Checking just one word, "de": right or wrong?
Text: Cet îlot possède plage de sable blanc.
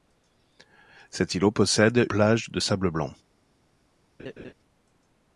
right